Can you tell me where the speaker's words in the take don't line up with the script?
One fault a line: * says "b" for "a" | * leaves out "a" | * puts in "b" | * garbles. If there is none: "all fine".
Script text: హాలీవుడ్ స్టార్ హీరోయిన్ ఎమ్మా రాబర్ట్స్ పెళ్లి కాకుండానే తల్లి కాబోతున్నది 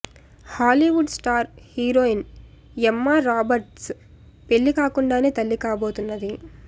all fine